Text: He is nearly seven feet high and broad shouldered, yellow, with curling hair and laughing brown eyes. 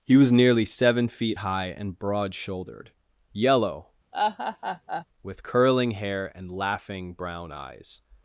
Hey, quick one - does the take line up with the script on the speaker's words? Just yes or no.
no